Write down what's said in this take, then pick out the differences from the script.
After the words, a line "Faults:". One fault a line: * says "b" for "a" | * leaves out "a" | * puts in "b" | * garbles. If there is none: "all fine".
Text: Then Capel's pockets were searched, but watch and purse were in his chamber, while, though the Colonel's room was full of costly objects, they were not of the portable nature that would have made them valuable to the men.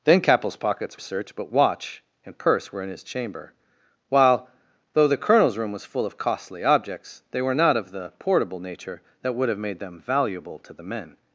Then Capel's pockets searched, but watch and purse were in his chamber, while, though the Colonel's room was full of costly objects, they were not of the portable nature that would have made them valuable to the men.
Faults:
* leaves out "were"